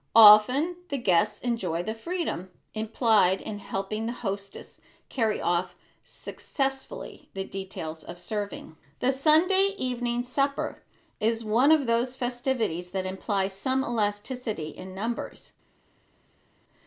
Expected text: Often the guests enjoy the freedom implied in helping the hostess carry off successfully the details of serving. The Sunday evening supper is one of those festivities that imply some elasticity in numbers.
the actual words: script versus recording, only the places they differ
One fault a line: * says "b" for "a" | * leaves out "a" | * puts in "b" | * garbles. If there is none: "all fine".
all fine